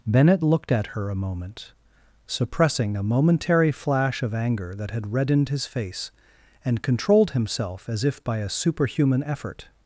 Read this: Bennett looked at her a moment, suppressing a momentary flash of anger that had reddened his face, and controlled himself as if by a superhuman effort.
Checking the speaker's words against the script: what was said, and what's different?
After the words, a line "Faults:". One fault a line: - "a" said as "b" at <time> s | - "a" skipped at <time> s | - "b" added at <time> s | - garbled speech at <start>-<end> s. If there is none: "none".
Bennett looked at her a moment, suppressing a momentary flash of anger that had reddened his face, and controlled himself as if by a superhuman effort.
Faults:
none